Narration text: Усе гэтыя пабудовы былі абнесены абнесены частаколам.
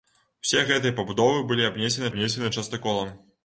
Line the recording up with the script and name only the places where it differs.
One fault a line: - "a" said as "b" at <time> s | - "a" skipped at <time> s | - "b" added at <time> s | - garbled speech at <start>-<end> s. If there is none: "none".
none